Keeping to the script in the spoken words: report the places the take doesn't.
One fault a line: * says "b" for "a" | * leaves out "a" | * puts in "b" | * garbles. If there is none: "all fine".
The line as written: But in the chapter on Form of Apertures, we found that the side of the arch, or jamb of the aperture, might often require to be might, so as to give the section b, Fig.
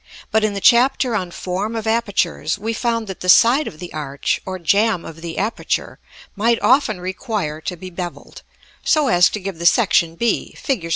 * says "bevelled" for "might"